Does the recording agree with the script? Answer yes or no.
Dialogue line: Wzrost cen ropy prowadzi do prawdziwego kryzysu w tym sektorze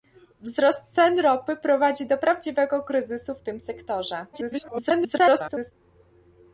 no